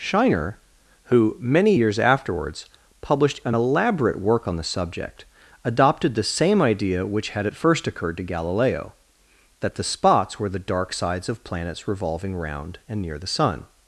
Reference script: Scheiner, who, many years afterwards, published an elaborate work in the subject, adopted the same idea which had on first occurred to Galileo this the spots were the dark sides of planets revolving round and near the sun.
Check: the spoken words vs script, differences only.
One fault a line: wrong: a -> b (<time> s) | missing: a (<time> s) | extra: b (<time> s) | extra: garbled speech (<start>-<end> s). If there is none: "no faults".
wrong: in -> on (4.5 s)
wrong: on -> at (7.4 s)
wrong: this -> that (9.6 s)